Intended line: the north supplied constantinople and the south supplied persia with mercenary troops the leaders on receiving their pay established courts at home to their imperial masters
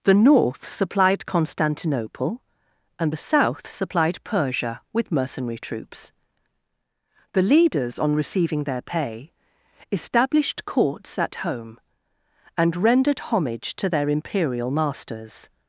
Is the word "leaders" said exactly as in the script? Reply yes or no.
yes